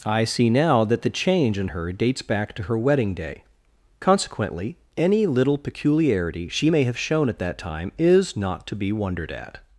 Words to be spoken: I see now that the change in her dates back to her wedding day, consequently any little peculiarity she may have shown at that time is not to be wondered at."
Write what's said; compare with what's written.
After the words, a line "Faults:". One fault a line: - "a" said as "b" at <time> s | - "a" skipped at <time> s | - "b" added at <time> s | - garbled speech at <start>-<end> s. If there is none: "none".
I see now that the change in her dates back to her wedding day, consequently any little peculiarity she may have shown at that time is not to be wondered at."
Faults:
none